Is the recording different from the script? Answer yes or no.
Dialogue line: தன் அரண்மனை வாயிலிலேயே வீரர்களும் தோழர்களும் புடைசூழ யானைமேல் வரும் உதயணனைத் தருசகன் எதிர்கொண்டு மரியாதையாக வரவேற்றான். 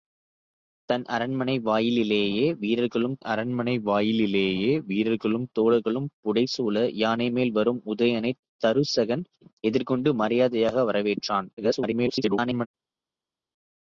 yes